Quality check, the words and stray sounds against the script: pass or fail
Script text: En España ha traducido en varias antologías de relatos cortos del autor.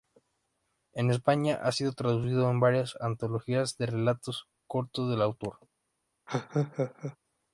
fail